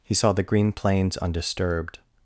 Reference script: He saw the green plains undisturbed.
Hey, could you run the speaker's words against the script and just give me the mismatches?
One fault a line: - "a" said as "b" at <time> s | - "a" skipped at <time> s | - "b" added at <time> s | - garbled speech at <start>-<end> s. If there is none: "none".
none